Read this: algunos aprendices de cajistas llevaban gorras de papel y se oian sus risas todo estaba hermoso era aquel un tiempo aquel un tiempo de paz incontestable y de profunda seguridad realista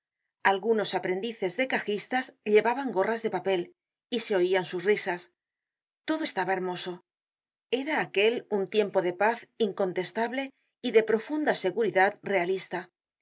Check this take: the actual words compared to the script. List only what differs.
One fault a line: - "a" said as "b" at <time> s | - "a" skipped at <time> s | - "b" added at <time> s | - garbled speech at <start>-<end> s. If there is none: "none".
- "aquel un tiempo" skipped at 9.0 s